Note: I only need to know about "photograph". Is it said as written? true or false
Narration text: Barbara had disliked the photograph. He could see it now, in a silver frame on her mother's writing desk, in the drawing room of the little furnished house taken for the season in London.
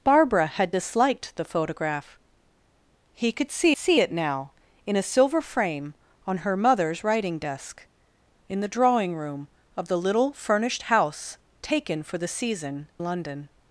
true